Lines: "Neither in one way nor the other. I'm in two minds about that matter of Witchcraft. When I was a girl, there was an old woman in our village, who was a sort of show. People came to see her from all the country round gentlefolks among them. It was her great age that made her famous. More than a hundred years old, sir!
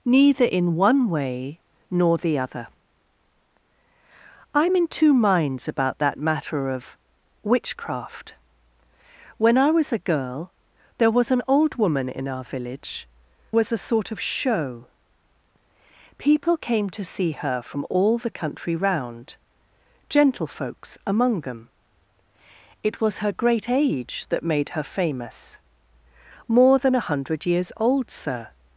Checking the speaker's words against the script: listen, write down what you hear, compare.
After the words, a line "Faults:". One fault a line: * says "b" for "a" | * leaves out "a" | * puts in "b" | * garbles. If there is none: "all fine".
"Neither in one way nor the other. I'm in two minds about that matter of Witchcraft. When I was a girl, there was an old woman in our village, was a sort of show. People came to see her from all the country round gentlefolks among them. It was her great age that made her famous. More than a hundred years old, sir!
Faults:
* leaves out "who"